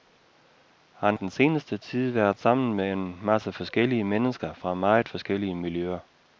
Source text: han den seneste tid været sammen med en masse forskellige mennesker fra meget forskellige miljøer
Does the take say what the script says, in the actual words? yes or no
yes